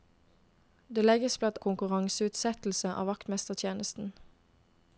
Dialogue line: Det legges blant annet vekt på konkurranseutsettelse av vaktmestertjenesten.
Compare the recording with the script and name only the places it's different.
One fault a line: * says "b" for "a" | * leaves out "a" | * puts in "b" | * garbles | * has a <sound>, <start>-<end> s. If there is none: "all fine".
* leaves out "annet vekt på"